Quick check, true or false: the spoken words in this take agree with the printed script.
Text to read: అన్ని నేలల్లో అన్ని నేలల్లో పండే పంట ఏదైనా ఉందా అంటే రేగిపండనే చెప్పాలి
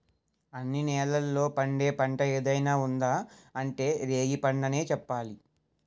false